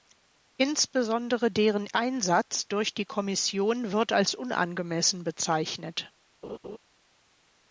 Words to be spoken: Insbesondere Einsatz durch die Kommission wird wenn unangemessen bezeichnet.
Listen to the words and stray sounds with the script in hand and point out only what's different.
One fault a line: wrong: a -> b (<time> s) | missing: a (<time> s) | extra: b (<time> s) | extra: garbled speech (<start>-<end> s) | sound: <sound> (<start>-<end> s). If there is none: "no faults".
extra: deren (1.5 s)
wrong: wenn -> als (4.1 s)
sound: laugh (6.4-6.8 s)